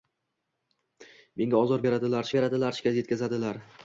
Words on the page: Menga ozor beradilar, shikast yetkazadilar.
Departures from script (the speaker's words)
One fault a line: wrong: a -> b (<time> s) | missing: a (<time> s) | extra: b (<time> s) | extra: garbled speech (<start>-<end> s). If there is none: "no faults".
extra: beradilar (2.4 s)